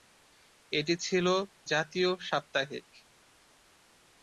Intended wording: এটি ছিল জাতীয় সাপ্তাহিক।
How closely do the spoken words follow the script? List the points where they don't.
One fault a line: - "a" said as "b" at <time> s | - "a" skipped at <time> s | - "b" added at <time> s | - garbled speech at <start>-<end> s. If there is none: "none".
none